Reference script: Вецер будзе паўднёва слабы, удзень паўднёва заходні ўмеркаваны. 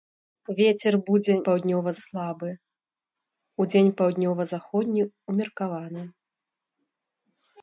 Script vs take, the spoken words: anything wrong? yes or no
no